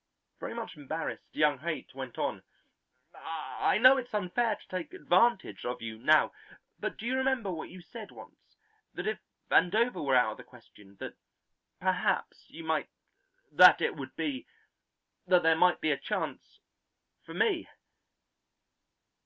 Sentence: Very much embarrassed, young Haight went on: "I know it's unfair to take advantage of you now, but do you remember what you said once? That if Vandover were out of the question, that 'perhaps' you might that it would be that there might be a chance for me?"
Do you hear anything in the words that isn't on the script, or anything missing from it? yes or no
no